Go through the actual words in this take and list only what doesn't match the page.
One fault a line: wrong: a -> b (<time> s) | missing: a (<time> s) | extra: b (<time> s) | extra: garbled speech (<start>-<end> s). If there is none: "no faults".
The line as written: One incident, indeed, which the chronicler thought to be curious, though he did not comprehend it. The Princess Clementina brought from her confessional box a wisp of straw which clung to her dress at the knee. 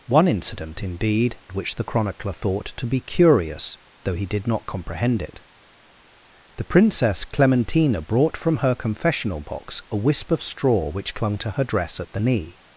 no faults